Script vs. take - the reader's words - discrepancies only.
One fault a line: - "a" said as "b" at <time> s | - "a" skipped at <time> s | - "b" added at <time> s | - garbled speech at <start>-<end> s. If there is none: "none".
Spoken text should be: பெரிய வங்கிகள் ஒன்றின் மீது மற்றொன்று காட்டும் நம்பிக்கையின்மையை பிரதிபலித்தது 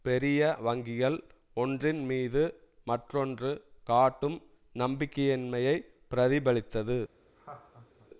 none